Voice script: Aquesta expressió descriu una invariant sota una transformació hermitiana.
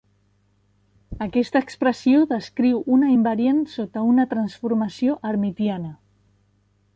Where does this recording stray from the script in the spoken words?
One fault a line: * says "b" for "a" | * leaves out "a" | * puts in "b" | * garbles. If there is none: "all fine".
all fine